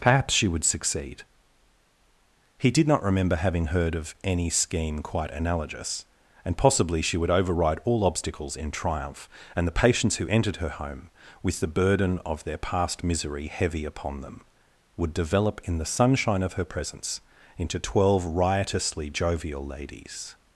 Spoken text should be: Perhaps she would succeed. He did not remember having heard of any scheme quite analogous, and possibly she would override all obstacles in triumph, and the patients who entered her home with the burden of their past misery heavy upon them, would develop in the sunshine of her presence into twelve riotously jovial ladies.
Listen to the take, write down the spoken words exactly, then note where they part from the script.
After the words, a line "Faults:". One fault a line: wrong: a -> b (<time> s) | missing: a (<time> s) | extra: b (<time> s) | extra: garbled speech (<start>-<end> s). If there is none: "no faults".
Perhaps she would succeed. He did not remember having heard of any scheme quite analogous, and possibly she would override all obstacles in triumph, and the patients who entered her home with the burden of their past misery heavy upon them, would develop in the sunshine of her presence into twelve riotously jovial ladies.
Faults:
no faults